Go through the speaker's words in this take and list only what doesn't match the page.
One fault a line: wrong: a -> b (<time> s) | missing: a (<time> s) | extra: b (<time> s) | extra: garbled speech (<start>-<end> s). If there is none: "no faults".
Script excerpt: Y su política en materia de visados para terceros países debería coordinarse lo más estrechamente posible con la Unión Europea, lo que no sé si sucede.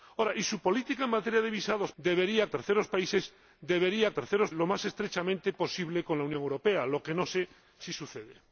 wrong: para -> debería (2.0 s)
wrong: coordinarse -> terceros (4.1 s)